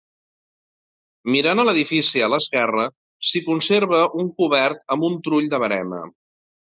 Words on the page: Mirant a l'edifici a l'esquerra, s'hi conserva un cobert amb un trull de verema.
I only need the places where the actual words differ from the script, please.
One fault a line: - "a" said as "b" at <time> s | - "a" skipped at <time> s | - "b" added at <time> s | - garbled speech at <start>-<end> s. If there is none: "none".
none